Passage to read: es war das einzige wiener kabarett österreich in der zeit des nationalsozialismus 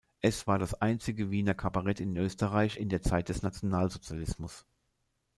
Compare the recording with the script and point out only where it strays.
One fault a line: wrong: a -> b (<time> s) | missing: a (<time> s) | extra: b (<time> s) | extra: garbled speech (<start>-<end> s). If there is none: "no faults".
extra: in (2.0 s)